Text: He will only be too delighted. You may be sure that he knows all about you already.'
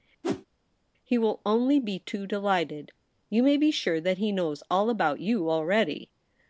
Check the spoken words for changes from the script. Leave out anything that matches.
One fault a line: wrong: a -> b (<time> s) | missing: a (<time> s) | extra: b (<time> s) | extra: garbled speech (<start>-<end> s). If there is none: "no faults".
no faults